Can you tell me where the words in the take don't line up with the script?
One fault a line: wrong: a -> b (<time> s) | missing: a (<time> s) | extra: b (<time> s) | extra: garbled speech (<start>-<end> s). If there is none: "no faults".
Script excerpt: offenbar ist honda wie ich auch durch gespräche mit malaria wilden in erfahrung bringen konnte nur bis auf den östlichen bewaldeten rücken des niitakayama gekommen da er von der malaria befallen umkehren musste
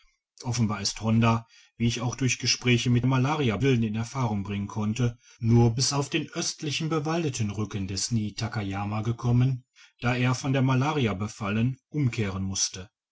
no faults